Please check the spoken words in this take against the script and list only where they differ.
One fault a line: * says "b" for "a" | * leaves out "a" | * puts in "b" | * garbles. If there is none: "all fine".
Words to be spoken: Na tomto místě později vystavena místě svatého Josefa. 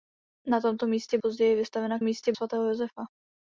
all fine